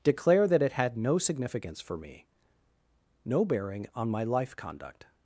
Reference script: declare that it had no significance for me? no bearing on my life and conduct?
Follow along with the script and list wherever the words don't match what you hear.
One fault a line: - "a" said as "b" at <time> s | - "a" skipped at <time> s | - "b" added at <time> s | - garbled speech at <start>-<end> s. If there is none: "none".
- "and" skipped at 4.5 s